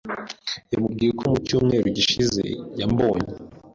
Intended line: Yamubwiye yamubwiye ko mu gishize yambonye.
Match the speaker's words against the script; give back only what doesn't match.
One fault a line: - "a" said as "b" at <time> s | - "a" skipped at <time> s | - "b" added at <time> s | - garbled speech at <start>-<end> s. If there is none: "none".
- "yamubwiye" skipped at 1.1 s
- "cyumweru" added at 1.5 s